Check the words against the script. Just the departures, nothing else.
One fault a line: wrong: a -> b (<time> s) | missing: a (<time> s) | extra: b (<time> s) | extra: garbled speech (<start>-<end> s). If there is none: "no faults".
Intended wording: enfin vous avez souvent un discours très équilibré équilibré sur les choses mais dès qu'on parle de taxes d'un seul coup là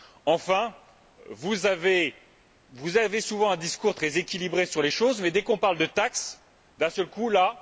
missing: équilibré (4.6 s)